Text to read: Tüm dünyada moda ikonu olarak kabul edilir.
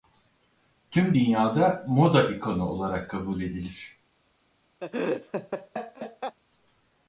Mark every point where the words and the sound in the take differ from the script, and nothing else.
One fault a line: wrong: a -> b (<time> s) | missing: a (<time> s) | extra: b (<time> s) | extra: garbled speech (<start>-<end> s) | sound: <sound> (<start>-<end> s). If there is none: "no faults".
sound: laugh (4.8-6.4 s)